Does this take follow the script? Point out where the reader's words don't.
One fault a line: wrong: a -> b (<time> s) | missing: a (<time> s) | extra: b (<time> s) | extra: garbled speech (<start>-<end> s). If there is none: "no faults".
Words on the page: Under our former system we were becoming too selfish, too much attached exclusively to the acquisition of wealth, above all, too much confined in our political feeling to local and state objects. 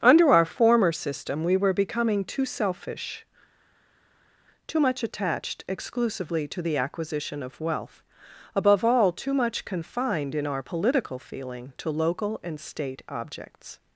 no faults